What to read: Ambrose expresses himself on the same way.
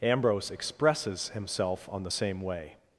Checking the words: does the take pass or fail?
pass